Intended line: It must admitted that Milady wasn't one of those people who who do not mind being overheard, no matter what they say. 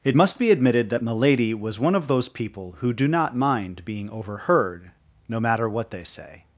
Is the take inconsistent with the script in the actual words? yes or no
yes